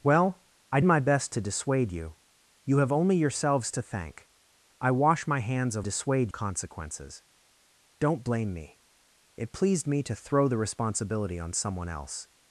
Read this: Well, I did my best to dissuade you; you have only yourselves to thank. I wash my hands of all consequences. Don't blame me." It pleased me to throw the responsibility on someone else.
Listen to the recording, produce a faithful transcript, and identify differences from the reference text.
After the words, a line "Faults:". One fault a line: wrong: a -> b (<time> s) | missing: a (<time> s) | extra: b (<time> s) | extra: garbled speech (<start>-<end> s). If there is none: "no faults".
Well, I my best to dissuade you; you have only yourselves to thank. I wash my hands of dissuade consequences. Don't blame me." It pleased me to throw the responsibility on someone else.
Faults:
missing: did (0.8 s)
wrong: all -> dissuade (5.8 s)